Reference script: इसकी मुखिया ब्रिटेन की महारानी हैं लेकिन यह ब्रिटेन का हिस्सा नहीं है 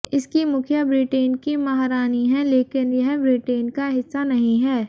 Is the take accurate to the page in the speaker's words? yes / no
yes